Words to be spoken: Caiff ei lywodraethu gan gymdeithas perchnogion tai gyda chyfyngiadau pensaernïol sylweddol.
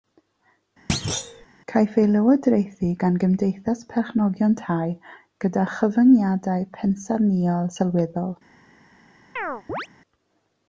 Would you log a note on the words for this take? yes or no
no